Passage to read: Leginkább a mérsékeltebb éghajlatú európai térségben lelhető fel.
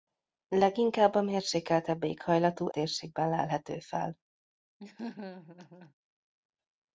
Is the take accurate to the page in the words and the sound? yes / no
no